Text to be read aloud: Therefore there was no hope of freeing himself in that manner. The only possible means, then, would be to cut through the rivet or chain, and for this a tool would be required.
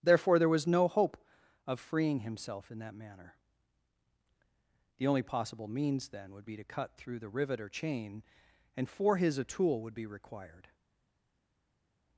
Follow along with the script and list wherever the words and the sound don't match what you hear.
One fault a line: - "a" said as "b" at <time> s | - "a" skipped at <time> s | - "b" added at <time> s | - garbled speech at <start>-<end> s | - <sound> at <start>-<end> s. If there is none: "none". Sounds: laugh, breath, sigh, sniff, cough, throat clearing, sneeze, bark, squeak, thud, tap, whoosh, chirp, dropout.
- "this" said as "his" at 9.2 s